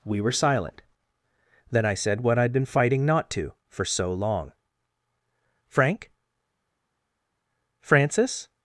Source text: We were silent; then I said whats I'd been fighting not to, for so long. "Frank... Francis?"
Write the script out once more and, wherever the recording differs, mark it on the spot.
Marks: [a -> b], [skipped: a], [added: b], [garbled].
We were silent; then I said [whats -> what] I'd been fighting not to, for so long. "Frank... Francis?"